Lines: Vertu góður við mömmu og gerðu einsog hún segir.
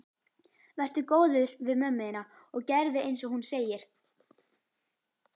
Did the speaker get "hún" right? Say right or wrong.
right